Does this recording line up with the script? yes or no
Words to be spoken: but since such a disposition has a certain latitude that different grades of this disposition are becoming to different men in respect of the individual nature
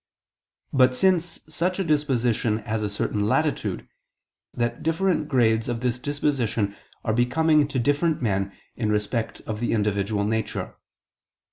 yes